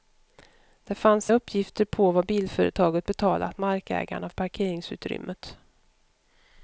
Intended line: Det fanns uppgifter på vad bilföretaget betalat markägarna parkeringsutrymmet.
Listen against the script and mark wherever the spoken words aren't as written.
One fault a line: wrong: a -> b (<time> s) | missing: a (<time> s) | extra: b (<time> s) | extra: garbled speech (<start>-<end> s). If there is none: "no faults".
no faults